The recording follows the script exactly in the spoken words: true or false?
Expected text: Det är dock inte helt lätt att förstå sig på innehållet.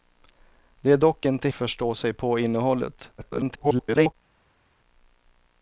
false